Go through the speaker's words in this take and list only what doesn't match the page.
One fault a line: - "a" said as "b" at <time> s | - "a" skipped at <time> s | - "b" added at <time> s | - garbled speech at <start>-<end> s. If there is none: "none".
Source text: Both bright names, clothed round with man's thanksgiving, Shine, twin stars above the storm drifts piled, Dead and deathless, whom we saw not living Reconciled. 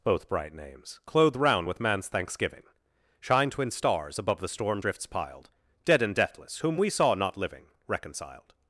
none